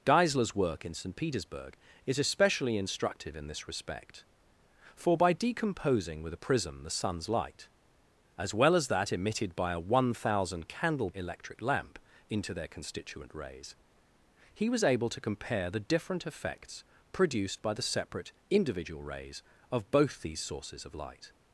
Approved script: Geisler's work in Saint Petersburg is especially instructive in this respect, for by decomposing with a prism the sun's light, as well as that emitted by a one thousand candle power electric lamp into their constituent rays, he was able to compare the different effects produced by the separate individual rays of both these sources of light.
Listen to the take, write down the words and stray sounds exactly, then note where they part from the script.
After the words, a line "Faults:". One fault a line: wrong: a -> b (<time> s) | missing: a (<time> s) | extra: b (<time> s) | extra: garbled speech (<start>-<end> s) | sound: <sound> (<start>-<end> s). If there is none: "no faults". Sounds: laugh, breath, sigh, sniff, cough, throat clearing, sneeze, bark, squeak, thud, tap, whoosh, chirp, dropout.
Geisler's work in Saint Petersburg is especially instructive in this respect, for by decomposing with a prism the sun's light, as well as that emitted by a one thousand candle electric lamp into their constituent rays, he was able to compare the different effects produced by the separate individual rays of both these sources of light.
Faults:
missing: power (11.1 s)